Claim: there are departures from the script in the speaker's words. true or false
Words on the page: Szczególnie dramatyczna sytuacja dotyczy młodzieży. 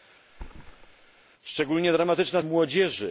true